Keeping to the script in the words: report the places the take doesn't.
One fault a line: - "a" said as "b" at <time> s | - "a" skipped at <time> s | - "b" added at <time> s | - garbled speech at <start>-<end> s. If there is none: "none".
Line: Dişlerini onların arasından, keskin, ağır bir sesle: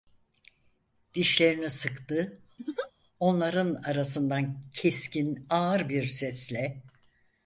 - "sıktı" added at 1.7 s